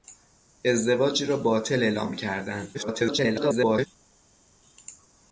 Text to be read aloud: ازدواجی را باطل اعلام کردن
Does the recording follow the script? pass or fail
fail